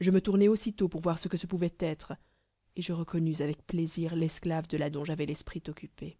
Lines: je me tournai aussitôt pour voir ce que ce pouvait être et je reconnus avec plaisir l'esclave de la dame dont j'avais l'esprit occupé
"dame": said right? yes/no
no